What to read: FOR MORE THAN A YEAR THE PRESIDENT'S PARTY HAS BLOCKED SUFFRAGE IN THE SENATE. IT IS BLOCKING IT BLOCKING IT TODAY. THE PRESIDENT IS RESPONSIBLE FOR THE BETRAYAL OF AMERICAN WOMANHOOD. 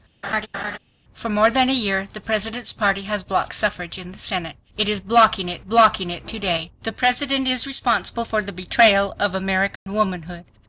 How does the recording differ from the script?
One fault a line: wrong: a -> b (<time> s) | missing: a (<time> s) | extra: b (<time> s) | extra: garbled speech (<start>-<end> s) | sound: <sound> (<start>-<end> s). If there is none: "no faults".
sound: laugh (0.2-0.8 s)
sound: dropout (9.8-9.9 s)